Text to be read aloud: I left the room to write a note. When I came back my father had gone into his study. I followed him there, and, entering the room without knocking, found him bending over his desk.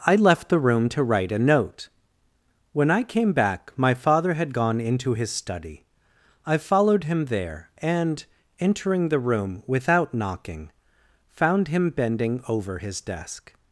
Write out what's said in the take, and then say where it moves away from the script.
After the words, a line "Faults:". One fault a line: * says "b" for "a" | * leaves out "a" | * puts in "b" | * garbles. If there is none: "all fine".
I left the room to write a note. When I came back my father had gone into his study. I followed him there, and, entering the room without knocking, found him bending over his desk.
Faults:
all fine